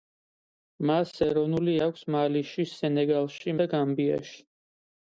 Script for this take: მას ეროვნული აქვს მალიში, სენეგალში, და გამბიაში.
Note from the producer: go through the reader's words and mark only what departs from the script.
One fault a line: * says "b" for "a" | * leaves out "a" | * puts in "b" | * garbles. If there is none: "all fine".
all fine